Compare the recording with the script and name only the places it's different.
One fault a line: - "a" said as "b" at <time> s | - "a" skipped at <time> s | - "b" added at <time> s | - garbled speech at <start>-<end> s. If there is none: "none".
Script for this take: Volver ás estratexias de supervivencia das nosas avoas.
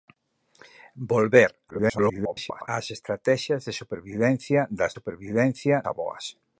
- garbled speech at 1.7-2.7 s
- "nosas" said as "supervivencia" at 5.0 s